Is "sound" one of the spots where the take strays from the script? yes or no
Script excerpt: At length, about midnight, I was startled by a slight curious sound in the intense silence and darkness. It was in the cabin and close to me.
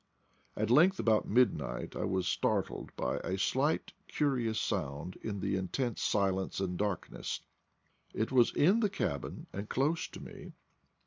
no